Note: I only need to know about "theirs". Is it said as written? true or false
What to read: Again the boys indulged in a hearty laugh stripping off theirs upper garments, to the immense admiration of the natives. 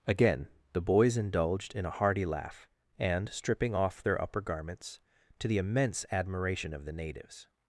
false